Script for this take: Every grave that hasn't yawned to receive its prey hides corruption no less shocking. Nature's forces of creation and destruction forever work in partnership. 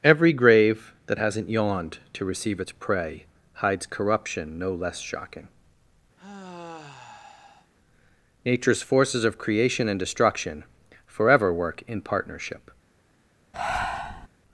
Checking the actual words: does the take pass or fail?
pass